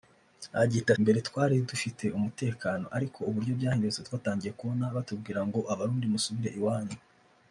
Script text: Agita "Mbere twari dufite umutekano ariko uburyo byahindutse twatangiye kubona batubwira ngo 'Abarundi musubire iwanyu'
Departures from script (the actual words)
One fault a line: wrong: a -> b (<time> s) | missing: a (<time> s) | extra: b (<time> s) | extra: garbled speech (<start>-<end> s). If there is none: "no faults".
no faults